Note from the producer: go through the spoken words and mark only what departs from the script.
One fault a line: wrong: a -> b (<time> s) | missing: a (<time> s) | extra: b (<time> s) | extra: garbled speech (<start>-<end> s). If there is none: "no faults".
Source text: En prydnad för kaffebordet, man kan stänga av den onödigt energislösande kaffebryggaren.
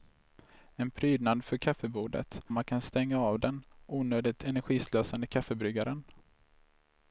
no faults